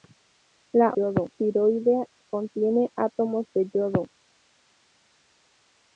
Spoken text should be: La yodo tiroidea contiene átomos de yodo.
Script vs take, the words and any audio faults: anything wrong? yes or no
no